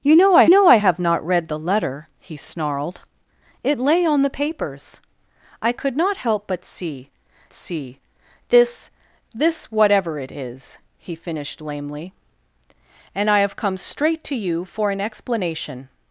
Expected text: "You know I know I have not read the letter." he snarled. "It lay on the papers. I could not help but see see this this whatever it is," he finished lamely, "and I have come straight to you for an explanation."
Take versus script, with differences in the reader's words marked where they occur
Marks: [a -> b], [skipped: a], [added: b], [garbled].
"You know I know I have not read the letter." he snarled. "It lay on the papers. I could not help but see see this this whatever it is," he finished lamely, "and I have come straight to you for an explanation."